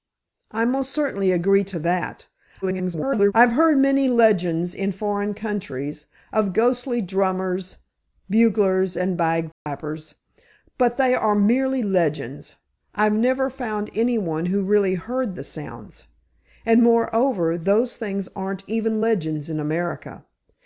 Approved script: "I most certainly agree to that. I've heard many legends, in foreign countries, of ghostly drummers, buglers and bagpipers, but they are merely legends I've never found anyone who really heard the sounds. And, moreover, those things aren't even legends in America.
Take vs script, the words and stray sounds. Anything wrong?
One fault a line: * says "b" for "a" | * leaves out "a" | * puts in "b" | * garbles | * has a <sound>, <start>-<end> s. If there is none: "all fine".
* garbles
* has a dropout, 9.5-9.7 s